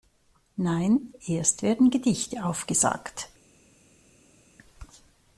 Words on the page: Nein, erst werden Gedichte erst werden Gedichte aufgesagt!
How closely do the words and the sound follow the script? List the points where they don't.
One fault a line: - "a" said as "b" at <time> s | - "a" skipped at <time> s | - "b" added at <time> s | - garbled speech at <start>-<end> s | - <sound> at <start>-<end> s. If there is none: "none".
- "erst werden Gedichte" skipped at 2.4 s